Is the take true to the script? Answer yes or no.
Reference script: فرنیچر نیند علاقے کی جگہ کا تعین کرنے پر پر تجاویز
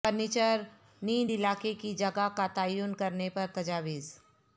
no